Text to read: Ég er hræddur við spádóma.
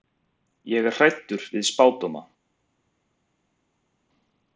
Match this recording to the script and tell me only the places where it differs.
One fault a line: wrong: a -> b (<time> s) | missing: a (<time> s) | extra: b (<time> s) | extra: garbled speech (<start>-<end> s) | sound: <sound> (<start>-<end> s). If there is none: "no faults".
no faults